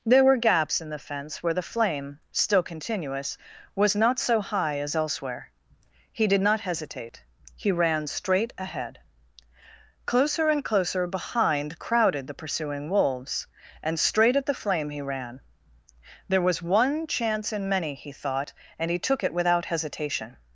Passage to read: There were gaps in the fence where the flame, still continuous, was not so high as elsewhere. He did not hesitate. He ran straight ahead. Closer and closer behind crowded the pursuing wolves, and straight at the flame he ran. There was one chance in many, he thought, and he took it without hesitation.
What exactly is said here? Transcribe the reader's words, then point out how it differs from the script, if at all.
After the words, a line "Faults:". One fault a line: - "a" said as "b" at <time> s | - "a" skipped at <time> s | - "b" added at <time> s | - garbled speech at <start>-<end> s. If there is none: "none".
There were gaps in the fence where the flame, still continuous, was not so high as elsewhere. He did not hesitate. He ran straight ahead. Closer and closer behind crowded the pursuing wolves, and straight at the flame he ran. There was one chance in many, he thought, and he took it without hesitation.
Faults:
none